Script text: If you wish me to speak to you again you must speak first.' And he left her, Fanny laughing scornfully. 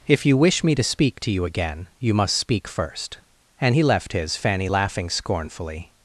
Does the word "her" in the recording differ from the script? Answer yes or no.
yes